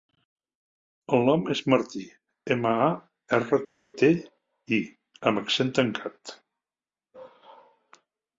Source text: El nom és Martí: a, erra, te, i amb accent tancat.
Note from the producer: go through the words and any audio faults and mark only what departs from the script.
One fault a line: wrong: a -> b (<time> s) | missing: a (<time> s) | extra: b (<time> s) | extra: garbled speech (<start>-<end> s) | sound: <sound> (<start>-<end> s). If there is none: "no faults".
extra: ema (2.5 s)